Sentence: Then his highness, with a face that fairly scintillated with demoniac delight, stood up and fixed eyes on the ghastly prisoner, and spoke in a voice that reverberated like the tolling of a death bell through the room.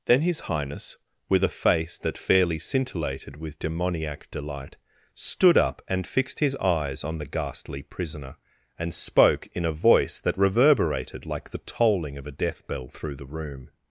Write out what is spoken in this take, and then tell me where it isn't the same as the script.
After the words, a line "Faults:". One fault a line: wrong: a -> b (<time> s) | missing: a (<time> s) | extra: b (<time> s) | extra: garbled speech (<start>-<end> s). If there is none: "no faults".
Then his highness, with a face that fairly scintillated with demoniac delight, stood up and fixed his eyes on the ghastly prisoner, and spoke in a voice that reverberated like the tolling of a death bell through the room.
Faults:
extra: his (6.4 s)